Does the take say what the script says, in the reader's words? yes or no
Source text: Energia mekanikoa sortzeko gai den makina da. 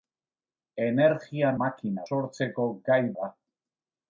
no